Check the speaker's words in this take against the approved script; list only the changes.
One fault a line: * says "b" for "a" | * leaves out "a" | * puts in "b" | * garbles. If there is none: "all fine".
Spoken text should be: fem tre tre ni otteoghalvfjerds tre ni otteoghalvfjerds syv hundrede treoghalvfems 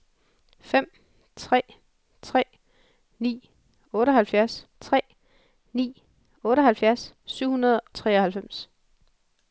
all fine